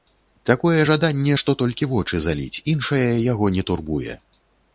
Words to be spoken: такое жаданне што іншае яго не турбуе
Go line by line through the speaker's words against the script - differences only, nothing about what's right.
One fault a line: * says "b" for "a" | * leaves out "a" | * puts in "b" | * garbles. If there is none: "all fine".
* puts in "толькі вочы заліць"